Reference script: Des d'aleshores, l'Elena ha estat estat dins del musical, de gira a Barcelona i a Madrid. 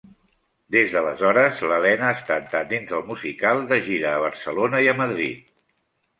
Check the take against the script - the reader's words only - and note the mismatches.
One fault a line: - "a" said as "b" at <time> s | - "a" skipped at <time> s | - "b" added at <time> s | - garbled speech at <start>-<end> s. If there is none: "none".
none